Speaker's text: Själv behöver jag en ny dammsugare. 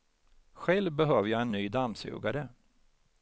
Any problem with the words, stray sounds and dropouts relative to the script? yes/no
no